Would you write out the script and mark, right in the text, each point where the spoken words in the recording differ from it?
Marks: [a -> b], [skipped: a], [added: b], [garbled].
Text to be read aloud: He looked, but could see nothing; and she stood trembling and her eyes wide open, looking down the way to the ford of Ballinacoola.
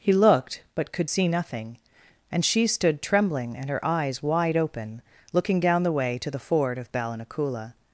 He looked, but could see nothing; and she stood trembling and her eyes wide open, looking down the way to the ford of Ballinacoola.